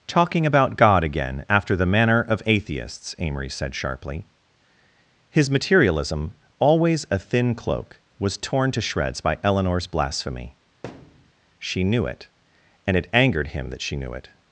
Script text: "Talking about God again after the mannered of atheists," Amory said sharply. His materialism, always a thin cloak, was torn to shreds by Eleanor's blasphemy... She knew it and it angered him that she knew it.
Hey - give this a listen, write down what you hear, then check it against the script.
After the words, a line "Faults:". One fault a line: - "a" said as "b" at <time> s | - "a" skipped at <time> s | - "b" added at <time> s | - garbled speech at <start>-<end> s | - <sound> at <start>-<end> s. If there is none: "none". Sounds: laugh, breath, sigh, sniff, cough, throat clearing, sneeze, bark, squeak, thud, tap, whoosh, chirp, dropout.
"Talking about God again after the manner of atheists," Amory said sharply. His materialism, always a thin cloak, was torn to shreds by Eleanor's blasphemy... She knew it and it angered him that she knew it.
Faults:
- "mannered" said as "manner" at 1.9 s
- thud at 10.8-11.3 s